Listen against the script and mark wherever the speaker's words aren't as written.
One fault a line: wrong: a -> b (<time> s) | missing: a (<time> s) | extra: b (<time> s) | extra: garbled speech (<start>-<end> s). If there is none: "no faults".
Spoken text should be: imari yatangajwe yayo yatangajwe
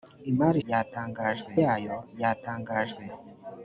no faults